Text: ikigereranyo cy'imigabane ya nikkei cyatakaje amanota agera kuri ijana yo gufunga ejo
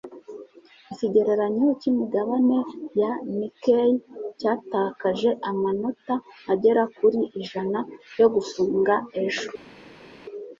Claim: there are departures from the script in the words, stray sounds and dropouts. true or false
false